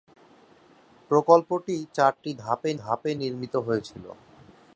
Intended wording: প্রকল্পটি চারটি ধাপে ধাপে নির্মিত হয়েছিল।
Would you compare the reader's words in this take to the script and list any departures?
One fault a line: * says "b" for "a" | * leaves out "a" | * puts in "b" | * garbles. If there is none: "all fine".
all fine